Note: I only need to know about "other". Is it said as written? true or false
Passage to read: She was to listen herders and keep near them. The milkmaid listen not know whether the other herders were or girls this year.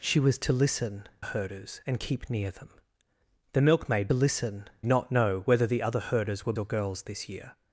true